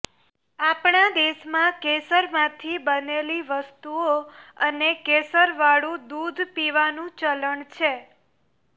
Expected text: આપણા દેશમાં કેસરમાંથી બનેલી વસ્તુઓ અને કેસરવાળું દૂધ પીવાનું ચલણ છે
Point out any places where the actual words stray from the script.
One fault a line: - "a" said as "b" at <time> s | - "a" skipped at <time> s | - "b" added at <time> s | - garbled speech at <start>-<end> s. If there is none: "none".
none